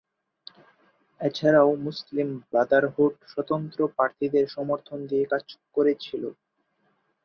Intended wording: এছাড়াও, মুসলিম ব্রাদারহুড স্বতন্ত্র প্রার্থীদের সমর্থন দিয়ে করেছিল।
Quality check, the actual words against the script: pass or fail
fail